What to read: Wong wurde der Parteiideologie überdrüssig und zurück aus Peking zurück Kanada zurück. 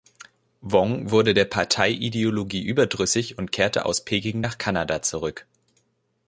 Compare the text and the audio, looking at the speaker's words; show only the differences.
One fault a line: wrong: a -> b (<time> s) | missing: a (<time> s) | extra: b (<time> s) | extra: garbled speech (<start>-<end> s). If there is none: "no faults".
wrong: zurück -> kehrte (3.5 s)
wrong: zurück -> nach (4.4 s)